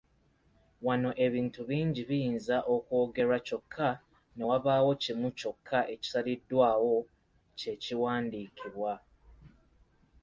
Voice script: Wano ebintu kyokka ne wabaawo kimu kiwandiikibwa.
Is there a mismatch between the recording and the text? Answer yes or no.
yes